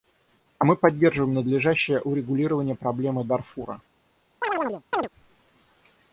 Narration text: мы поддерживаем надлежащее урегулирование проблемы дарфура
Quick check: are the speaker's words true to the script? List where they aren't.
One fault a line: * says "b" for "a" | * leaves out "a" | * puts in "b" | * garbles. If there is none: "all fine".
all fine